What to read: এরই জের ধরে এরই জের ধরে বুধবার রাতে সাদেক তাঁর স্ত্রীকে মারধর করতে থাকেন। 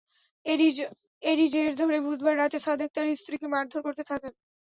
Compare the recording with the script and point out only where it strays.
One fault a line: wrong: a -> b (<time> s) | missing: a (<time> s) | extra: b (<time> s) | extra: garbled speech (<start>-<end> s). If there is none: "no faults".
missing: এরই জের ধরে (2.0 s)